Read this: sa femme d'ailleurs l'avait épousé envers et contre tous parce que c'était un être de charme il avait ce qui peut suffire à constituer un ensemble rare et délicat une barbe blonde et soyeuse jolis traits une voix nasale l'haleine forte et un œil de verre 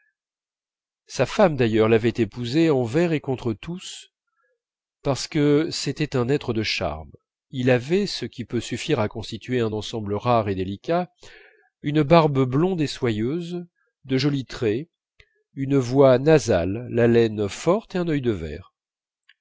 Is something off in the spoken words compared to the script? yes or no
yes